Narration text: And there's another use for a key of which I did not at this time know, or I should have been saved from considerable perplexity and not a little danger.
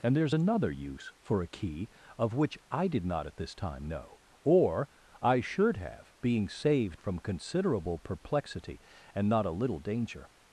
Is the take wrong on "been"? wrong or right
wrong